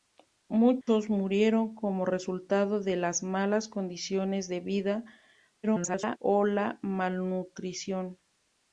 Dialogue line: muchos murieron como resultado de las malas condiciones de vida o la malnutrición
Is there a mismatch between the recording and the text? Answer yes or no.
yes